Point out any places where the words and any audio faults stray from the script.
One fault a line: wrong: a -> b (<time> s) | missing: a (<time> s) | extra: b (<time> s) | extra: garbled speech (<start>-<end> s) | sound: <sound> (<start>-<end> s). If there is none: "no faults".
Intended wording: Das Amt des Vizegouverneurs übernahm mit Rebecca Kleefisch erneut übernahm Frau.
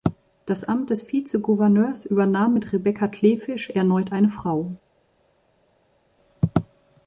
wrong: übernahm -> eine (4.1 s)